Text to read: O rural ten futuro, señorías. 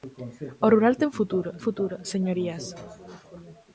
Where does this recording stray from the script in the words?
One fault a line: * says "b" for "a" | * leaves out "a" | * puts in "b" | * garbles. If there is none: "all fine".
* puts in "futuro"